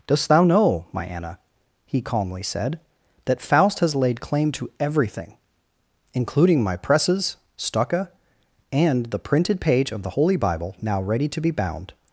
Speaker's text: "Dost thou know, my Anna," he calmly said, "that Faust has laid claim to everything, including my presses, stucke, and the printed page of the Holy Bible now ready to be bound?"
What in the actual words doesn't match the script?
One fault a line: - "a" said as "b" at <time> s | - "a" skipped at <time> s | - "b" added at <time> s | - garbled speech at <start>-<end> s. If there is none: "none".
none